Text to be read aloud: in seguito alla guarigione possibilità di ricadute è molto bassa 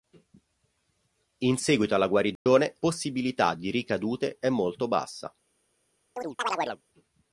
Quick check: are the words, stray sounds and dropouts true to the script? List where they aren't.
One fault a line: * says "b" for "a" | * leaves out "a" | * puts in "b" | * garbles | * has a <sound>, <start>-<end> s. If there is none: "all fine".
* has a dropout, 2.4-2.5 s
* has a chirp, 6.2-6.8 s